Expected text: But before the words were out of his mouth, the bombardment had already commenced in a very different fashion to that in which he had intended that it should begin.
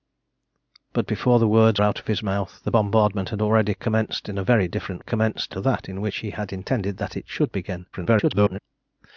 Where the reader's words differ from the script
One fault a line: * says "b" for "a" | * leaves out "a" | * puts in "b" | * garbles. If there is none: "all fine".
* leaves out "were"
* says "commenced" for "fashion"
* garbles